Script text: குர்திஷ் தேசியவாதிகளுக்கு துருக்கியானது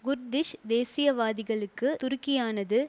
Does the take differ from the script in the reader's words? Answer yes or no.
no